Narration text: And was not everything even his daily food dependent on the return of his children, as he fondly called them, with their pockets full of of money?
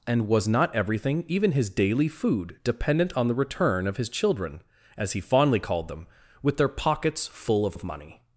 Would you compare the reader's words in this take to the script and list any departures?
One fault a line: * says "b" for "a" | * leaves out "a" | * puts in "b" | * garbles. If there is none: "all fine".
all fine